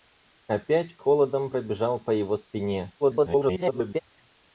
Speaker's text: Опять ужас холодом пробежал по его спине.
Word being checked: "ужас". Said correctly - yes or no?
no